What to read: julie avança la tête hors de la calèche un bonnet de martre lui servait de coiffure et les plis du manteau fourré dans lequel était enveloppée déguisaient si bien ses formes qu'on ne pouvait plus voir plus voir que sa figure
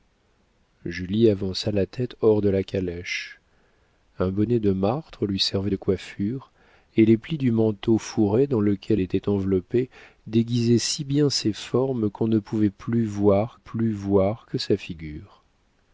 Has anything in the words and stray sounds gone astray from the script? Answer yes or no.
no